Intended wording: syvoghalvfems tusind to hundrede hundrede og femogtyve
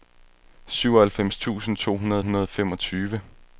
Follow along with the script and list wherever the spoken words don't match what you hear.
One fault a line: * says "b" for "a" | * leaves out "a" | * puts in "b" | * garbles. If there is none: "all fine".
all fine